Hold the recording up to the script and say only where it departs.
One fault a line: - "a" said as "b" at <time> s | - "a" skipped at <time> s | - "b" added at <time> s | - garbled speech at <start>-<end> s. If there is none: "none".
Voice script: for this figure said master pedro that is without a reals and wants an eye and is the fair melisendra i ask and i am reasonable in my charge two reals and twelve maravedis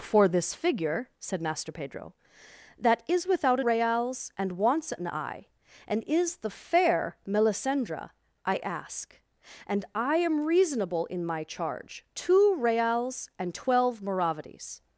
none